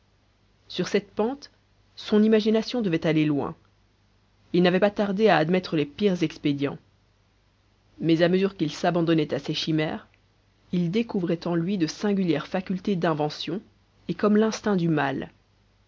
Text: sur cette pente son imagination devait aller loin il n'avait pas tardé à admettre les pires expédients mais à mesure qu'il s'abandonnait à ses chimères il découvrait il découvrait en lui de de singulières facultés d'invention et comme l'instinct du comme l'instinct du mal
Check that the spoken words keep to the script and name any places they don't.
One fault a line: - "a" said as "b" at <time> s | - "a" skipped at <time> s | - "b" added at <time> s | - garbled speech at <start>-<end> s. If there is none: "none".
- "il découvrait" skipped at 11.5 s
- "de" skipped at 11.9 s
- "comme l'instinct du" skipped at 14.9 s